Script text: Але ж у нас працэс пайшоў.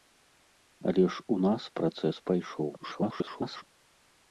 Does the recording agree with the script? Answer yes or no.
no